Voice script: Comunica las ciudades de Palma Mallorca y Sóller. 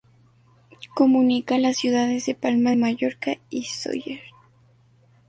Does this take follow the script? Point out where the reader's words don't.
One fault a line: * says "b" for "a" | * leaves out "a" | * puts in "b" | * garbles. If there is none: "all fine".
all fine